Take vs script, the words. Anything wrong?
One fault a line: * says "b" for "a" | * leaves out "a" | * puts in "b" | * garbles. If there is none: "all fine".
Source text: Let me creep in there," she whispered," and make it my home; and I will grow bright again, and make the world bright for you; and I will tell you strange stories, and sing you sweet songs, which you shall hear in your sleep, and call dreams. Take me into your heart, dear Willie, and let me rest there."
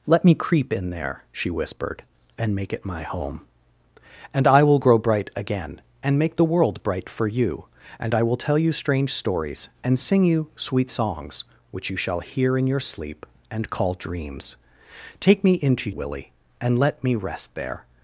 * leaves out "your heart dear"